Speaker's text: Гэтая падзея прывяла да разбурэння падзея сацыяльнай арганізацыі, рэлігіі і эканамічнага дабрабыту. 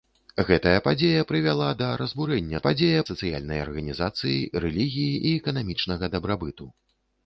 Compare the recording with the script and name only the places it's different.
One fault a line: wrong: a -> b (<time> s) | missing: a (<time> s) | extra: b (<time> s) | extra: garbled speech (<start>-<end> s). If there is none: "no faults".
no faults